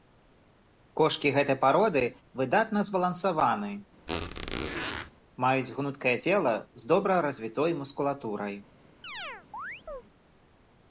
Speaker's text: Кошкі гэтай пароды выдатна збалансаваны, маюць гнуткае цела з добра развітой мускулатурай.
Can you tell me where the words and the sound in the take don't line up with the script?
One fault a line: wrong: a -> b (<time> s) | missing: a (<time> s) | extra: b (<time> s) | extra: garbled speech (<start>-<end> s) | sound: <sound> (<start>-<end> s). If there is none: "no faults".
sound: squeak (4.1-5.1 s)
sound: chirp (9.0-10.0 s)